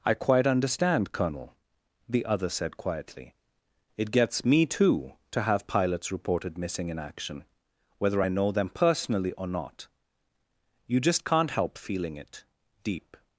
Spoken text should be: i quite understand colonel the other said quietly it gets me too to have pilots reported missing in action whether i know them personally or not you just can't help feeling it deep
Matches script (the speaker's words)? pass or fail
pass